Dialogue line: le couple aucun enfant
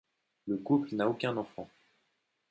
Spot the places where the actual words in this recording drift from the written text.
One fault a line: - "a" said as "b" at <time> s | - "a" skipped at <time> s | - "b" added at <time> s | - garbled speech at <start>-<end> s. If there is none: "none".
- "n'a" added at 0.9 s